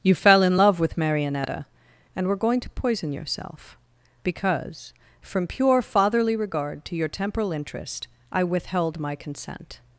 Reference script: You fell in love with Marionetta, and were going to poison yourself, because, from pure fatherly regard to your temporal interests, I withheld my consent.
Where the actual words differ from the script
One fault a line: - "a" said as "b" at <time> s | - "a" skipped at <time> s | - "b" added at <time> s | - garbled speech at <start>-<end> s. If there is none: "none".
- "interests" said as "interest" at 7.5 s